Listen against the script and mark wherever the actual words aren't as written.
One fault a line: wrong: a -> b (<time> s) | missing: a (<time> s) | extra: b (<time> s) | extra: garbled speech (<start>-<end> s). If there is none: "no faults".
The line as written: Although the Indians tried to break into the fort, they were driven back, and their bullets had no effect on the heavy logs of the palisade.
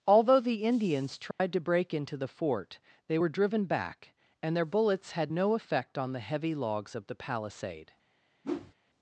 no faults